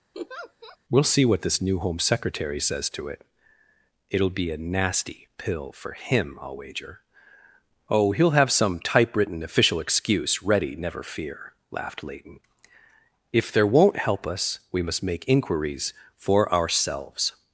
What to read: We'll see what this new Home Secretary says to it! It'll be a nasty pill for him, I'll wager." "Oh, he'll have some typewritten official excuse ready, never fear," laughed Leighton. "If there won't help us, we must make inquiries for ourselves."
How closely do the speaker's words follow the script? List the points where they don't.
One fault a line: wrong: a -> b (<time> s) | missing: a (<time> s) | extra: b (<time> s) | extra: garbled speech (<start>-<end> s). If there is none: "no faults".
no faults